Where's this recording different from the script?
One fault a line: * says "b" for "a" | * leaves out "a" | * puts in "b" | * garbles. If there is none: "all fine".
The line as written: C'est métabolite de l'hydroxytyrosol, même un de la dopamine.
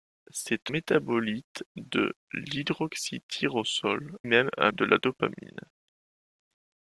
all fine